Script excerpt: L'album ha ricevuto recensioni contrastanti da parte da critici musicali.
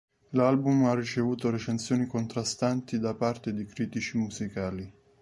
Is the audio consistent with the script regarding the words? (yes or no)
no